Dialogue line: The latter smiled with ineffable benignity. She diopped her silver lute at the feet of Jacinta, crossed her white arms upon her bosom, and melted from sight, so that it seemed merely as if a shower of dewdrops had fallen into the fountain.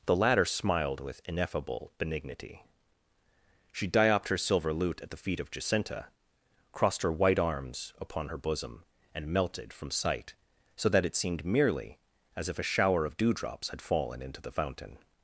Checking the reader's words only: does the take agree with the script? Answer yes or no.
yes